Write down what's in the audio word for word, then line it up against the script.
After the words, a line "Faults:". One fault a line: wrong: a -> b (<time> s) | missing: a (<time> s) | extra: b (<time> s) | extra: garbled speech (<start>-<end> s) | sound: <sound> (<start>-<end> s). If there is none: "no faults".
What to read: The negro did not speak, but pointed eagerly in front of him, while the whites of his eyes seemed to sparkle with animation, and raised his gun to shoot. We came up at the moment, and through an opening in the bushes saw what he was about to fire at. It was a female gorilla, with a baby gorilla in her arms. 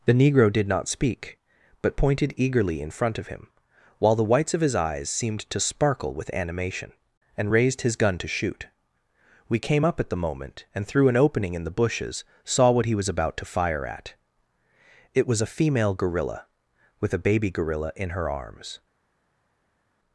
The negro did not speak, but pointed eagerly in front of him, while the whites of his eyes seemed to sparkle with animation, and raised his gun to shoot. We came up at the moment, and through an opening in the bushes saw what he was about to fire at. It was a female gorilla, with a baby gorilla in her arms.
Faults:
no faults